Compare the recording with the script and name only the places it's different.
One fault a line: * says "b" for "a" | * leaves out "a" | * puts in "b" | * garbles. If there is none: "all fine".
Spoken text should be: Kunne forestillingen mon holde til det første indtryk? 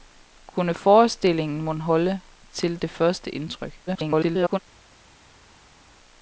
* garbles